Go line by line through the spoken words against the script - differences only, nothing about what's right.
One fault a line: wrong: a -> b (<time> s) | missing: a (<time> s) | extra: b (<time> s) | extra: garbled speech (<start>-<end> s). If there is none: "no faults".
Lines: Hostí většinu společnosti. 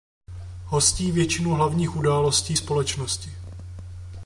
extra: hlavních událostí (1.5 s)